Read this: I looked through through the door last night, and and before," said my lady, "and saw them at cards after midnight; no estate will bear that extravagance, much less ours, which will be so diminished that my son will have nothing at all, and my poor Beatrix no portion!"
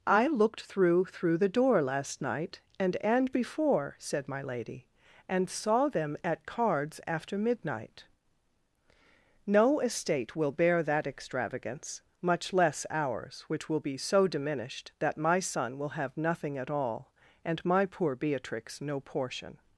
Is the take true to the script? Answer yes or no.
yes